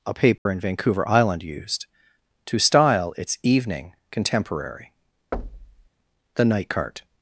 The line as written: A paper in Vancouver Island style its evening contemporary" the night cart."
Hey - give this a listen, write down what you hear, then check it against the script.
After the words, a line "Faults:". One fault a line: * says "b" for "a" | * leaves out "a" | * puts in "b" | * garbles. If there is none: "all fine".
A paper in Vancouver Island used to style its evening contemporary" the night cart."
Faults:
* puts in "used to"